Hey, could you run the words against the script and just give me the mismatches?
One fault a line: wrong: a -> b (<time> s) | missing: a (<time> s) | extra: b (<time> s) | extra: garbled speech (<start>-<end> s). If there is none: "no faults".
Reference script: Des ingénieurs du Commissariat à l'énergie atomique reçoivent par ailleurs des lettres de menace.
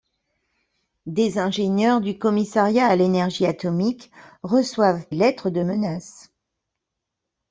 missing: par ailleurs des (5.1 s)